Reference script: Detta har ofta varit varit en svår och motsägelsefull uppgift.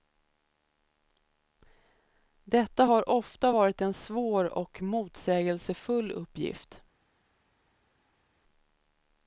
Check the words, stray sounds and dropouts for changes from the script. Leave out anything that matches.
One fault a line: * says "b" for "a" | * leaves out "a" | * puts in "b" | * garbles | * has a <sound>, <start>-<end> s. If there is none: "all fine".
* leaves out "varit"